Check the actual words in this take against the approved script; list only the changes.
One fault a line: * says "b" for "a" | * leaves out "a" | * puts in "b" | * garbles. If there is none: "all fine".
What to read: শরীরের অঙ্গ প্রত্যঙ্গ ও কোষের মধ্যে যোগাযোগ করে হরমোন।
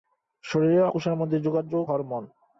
* leaves out "অঙ্গ প্রত্যঙ্গ ও"
* leaves out "করে"